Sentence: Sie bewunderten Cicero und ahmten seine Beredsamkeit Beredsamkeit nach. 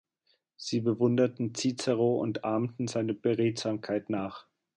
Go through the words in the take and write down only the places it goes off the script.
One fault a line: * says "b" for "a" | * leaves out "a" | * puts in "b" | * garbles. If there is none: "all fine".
* leaves out "Beredsamkeit"